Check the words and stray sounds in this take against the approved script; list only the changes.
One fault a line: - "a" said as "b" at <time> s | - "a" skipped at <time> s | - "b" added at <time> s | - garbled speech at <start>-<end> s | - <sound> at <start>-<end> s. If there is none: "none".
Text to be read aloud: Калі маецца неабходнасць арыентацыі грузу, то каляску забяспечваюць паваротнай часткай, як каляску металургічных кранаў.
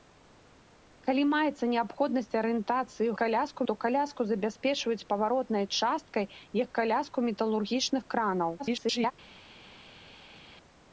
- "грузу" said as "каляску" at 3.2 s
- garbled speech at 8.6-9.1 s